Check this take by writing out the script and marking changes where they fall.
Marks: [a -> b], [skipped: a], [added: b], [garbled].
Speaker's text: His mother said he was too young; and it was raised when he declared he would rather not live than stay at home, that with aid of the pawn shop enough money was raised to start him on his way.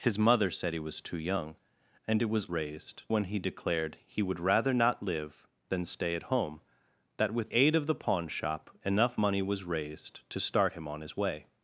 His mother said he was too young; and it was raised when he declared he would rather not live than stay at home, that with aid of the pawn shop enough money was raised to start him on his way.